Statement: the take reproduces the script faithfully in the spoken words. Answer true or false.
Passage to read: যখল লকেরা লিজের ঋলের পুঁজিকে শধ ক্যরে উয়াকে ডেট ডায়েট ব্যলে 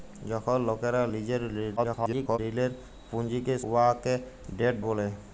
false